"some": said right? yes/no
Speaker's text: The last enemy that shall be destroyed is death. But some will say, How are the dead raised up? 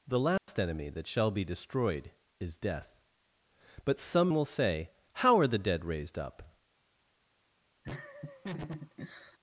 yes